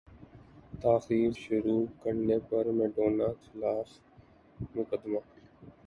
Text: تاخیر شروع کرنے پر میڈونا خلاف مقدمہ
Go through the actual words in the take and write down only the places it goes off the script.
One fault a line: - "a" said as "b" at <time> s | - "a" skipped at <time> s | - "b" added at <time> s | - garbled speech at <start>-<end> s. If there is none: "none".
none